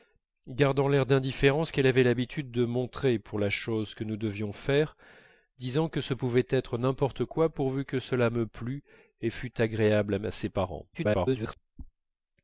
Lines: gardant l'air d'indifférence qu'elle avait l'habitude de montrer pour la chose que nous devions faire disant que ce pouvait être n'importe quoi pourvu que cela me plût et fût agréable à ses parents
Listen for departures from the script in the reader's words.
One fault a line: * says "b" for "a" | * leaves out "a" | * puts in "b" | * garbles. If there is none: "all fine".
* garbles